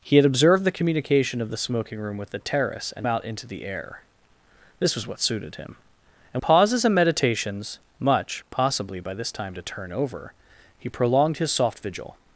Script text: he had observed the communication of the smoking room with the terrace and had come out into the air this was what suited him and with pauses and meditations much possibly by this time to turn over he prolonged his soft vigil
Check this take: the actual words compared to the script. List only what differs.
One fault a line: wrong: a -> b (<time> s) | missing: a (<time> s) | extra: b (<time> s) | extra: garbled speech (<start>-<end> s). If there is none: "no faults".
missing: had come (3.0 s)
missing: with (6.4 s)